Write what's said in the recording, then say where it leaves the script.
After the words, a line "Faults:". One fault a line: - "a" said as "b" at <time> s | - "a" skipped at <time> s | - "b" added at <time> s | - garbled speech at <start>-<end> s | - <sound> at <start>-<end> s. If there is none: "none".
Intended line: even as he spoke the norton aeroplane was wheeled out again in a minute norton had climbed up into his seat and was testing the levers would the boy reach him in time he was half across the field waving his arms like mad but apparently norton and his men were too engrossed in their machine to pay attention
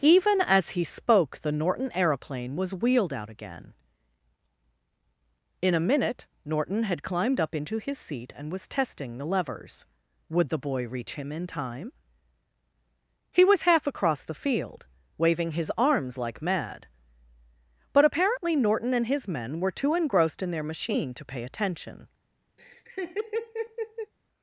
even as he spoke the norton aeroplane was wheeled out again in a minute norton had climbed up into his seat and was testing the levers would the boy reach him in time he was half across the field waving his arms like mad but apparently norton and his men were too engrossed in their machine to pay attention
Faults:
- laugh at 22.6-24.1 s